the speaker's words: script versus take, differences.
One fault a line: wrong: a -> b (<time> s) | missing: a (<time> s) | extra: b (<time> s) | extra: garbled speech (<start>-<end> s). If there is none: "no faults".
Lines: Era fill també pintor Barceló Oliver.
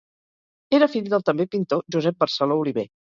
extra: del (1.1 s)
extra: Josep (2.0 s)